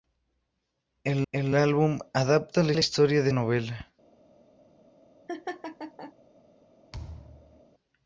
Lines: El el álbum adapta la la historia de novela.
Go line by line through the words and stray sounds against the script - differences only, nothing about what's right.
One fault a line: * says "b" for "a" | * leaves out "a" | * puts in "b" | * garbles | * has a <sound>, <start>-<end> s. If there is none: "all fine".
* has a laugh, 5.3-6.1 s
* has a thud, 6.9-7.6 s